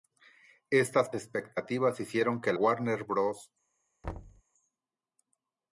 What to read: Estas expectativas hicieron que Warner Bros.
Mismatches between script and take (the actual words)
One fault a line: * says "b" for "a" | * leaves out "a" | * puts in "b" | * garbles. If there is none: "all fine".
all fine